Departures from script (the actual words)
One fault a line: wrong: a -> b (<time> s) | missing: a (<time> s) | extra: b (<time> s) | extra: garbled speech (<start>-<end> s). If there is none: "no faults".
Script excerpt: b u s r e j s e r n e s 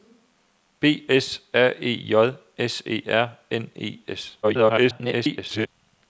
missing: u (1.1 s)
extra: garbled speech (4.4-5.7 s)